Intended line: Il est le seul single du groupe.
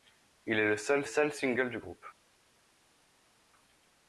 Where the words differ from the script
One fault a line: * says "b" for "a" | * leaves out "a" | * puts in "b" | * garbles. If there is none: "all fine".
* puts in "seul"